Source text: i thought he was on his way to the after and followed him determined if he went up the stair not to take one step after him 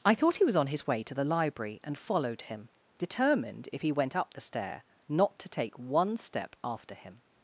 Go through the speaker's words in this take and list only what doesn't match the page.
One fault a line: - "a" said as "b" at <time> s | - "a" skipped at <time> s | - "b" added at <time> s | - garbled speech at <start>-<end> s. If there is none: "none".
- "after" said as "library" at 1.2 s